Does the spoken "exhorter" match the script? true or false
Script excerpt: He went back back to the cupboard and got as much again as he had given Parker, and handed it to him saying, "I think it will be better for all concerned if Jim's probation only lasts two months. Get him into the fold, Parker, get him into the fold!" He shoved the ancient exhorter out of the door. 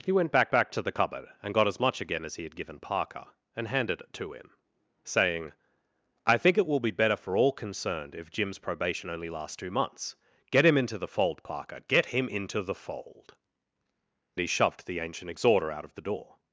true